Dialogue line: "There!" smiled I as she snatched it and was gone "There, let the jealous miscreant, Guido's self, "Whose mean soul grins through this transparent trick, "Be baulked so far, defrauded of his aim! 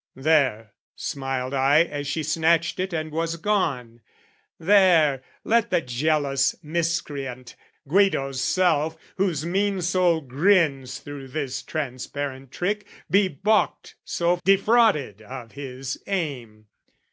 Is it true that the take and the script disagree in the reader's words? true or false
true